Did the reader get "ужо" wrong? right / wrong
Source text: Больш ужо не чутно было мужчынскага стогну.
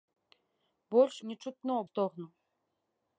wrong